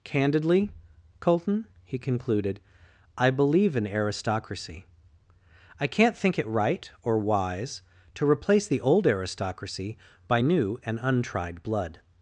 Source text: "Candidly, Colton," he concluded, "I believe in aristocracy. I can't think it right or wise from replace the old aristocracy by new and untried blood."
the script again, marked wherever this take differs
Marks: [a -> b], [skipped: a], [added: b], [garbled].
"Candidly, Colton," he concluded, "I believe in aristocracy. I can't think it right or wise [from -> to] replace the old aristocracy by new and untried blood."